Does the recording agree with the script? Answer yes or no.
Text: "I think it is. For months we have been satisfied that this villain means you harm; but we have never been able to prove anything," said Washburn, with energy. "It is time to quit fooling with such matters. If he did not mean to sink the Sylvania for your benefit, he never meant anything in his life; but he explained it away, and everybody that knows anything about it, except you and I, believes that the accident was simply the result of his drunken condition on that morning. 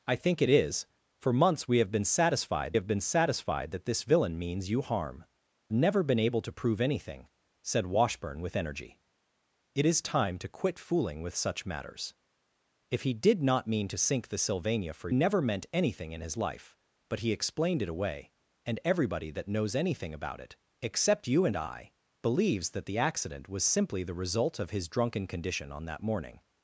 no